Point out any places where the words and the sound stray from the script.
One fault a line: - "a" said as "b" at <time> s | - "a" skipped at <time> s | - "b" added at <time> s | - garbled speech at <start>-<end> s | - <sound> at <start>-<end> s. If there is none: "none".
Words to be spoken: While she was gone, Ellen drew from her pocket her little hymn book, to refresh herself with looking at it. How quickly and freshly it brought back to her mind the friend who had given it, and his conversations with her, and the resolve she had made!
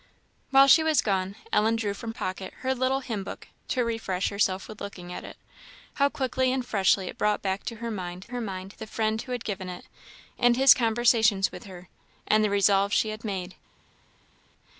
- "her" skipped at 2.1 s
- "her mind" added at 8.3 s